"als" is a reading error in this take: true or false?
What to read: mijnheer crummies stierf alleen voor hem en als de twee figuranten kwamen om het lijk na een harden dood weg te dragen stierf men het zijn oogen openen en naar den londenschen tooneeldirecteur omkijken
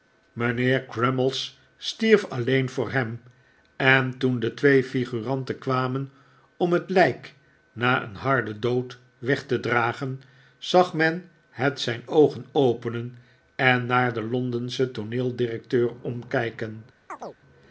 true